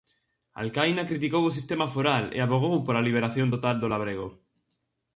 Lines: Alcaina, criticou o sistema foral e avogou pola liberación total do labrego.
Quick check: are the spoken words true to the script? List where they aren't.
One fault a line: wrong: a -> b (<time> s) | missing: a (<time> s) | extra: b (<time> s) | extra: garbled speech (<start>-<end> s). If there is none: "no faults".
no faults